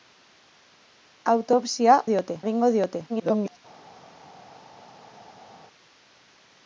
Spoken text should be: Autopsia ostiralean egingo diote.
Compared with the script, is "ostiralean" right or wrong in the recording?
wrong